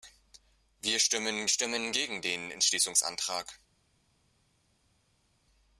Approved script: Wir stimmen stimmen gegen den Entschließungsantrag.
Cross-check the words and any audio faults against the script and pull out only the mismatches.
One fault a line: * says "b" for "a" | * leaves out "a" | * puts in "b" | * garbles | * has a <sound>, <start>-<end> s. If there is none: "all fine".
all fine